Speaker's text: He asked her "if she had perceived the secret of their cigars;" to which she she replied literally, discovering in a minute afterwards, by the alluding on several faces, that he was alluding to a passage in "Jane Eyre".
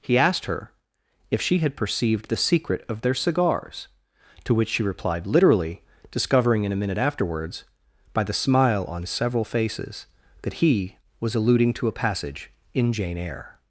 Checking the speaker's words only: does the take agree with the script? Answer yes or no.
no